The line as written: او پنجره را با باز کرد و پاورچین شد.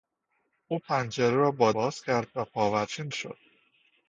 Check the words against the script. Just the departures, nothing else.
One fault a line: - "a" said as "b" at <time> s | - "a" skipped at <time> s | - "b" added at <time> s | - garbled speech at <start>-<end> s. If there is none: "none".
none